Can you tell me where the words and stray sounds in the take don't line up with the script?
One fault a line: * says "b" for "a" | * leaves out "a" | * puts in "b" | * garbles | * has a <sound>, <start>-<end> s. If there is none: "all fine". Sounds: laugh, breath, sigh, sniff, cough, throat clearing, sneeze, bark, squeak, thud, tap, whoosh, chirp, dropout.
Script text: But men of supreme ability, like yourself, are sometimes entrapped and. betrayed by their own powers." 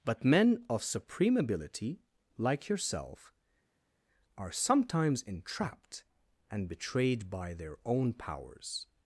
all fine